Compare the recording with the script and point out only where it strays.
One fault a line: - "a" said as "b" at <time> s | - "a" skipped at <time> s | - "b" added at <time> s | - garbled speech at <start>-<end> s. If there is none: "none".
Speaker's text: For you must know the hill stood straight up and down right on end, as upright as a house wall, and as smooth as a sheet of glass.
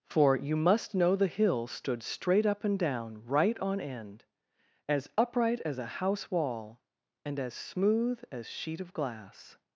- "a" skipped at 8.5 s